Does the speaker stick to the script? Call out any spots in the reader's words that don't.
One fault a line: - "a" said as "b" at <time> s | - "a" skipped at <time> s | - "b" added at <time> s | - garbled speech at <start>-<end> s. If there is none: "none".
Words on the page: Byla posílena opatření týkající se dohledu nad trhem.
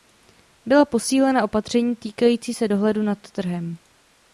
none